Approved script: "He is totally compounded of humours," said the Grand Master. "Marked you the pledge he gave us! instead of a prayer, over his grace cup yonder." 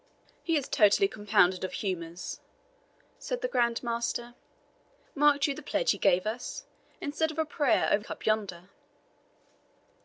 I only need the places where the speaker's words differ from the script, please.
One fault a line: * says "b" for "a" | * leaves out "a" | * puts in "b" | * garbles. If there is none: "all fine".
* leaves out "his grace"